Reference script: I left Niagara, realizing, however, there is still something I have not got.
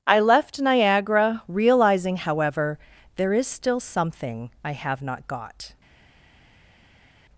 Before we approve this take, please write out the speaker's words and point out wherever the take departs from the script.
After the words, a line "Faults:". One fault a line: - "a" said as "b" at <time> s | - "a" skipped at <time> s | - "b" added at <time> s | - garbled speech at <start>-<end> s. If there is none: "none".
I left Niagara, realizing, however, there is still something I have not got.
Faults:
none